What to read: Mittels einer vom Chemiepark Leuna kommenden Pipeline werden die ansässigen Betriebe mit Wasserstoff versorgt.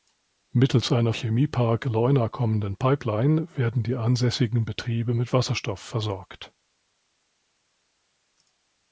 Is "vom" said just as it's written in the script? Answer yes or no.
no